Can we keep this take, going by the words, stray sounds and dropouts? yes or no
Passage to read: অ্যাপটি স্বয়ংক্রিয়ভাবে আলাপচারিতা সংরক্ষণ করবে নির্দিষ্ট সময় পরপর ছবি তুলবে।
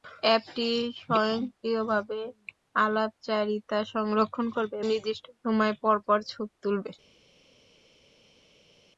yes